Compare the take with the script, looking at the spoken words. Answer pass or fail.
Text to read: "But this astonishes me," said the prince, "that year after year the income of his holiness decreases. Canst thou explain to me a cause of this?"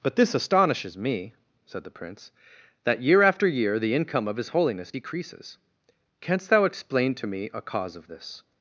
pass